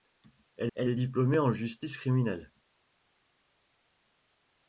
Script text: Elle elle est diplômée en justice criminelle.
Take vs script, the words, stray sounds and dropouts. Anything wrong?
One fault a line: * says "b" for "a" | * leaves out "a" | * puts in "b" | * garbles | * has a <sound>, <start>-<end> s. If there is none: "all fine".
all fine